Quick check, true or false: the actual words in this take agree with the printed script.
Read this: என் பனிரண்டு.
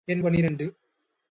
true